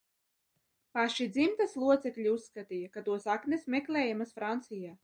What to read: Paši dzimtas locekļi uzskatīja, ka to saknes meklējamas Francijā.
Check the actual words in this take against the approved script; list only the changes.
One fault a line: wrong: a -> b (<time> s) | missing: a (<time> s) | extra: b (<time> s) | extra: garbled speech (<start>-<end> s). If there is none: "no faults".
no faults